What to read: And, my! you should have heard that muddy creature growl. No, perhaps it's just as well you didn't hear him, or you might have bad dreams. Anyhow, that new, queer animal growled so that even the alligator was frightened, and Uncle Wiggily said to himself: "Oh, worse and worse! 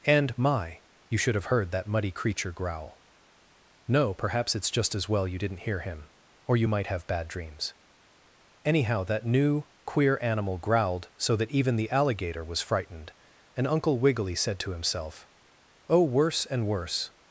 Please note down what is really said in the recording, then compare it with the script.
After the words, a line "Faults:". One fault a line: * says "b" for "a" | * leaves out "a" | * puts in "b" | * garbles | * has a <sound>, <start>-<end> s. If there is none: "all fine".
And, my! you should have heard that muddy creature growl. No, perhaps it's just as well you didn't hear him, or you might have bad dreams. Anyhow, that new, queer animal growled so that even the alligator was frightened, and Uncle Wiggily said to himself: "Oh, worse and worse!
Faults:
all fine